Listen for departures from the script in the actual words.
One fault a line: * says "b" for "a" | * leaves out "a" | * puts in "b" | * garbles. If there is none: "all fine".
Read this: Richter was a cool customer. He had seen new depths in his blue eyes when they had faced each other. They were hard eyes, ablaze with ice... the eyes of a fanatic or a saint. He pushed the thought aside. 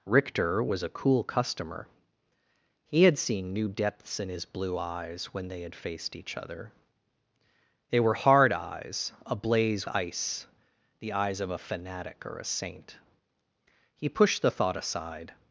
* leaves out "with"